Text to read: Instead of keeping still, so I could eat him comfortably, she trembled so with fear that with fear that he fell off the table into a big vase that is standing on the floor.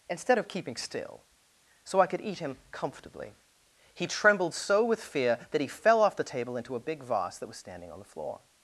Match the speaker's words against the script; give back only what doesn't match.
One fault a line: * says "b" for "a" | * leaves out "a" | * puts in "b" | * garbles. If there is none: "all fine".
* says "he" for "she"
* leaves out "with fear that"
* says "was" for "is"